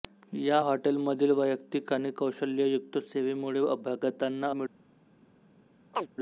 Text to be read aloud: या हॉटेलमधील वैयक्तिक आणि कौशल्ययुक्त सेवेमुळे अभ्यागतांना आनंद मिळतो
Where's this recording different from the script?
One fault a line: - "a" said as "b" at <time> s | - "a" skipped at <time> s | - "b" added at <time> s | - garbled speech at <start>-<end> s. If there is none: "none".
- "आनंद" skipped at 4.5 s